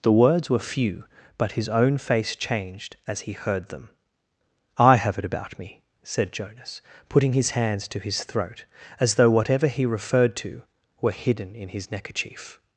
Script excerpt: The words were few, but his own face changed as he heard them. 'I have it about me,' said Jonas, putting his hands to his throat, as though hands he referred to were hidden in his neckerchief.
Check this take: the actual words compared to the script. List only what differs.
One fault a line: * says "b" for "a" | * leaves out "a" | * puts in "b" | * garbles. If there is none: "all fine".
* says "whatever" for "hands"